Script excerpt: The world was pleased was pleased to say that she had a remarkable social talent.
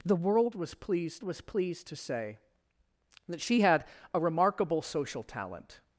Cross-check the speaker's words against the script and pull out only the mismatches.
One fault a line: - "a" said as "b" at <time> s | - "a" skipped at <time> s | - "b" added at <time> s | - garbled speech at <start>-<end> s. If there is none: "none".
none